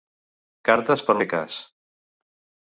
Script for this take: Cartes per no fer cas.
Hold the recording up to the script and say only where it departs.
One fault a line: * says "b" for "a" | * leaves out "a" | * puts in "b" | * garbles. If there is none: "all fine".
* leaves out "no"